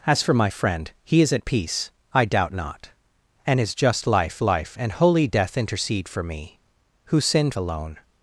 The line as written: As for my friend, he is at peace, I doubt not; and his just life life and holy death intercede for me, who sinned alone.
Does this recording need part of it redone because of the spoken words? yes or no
no